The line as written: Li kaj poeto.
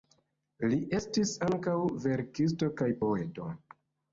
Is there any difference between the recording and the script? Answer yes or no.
yes